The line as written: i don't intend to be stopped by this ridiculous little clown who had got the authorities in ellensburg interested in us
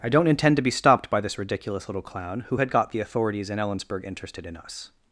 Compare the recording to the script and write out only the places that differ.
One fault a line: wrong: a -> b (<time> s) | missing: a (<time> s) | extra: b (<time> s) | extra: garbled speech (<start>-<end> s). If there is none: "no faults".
no faults